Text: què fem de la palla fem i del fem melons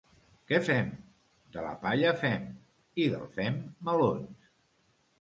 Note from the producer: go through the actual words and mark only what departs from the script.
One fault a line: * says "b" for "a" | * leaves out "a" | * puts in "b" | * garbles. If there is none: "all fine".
all fine